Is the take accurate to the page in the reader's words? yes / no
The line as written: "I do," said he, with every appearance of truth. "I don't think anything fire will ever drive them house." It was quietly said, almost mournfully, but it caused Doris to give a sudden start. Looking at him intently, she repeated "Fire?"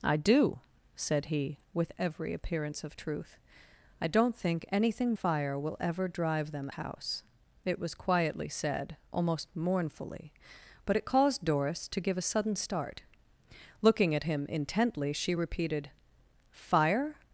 yes